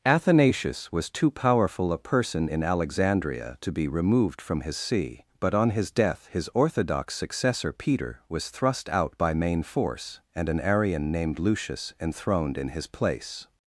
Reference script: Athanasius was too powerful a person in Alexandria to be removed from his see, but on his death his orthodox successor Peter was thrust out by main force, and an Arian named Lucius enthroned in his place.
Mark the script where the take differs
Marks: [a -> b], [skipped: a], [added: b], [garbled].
Athanasius was too powerful a person in Alexandria to be removed from his see, but on his death his orthodox successor Peter was thrust out by main force, and an Arian named Lucius enthroned in his place.